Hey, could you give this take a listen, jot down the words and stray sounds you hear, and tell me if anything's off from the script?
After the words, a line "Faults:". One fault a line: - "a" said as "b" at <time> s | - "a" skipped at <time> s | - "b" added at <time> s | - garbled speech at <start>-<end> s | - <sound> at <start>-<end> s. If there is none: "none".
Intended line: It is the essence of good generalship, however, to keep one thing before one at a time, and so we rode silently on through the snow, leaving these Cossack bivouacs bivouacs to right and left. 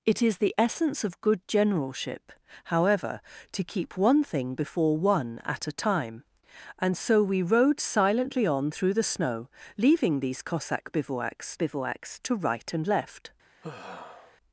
It is the essence of good generalship, however, to keep one thing before one at a time, and so we rode silently on through the snow, leaving these Cossack bivouacs bivouacs to right and left.
Faults:
- sigh at 13.6-14.4 s